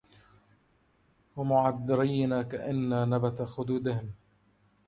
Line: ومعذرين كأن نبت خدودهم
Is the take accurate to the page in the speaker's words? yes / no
yes